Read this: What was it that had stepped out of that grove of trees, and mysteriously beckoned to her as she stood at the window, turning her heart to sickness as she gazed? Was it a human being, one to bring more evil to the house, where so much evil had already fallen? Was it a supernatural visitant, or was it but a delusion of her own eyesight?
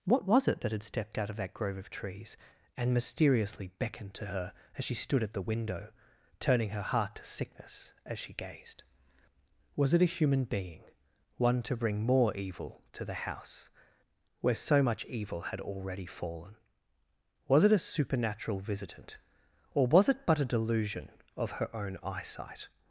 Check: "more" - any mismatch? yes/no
no